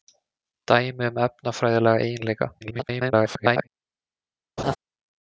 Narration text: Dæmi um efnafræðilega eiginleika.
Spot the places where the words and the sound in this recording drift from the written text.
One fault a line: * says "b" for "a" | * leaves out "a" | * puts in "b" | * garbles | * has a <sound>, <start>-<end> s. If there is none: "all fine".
* garbles
* has a laugh, 4.6-4.8 s